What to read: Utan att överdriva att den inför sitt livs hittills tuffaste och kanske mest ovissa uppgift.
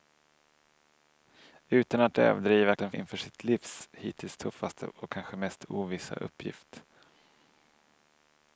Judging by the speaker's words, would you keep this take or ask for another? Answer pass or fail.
pass